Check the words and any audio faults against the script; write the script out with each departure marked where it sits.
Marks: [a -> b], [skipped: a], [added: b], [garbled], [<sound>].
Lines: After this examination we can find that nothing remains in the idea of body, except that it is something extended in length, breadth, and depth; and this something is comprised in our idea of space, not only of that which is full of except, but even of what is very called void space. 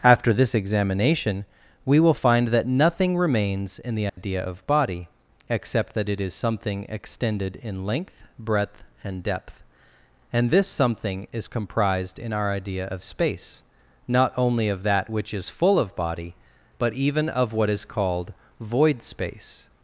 After this examination we [can -> will] find that nothing remains in the idea [dropout] of body, except that it is something extended in length, breadth, and depth; and this something is comprised in our idea of space, not only of that which is full of [except, -> body] but even of what is [skipped: very] called void space.